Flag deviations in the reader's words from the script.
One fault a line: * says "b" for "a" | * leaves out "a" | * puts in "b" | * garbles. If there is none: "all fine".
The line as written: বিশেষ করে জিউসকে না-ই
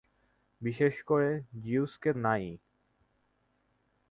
all fine